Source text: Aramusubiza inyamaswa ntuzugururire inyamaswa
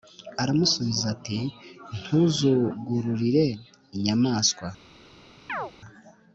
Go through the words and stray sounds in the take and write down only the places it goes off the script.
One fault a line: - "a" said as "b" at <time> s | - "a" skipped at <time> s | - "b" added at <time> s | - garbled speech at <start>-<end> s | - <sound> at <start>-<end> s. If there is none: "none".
- "inyamaswa" said as "ati" at 1.1 s
- chirp at 5.5-5.7 s